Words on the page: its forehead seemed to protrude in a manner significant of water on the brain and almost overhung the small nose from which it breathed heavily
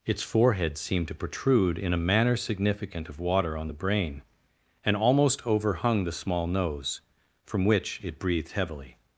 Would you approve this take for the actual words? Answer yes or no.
yes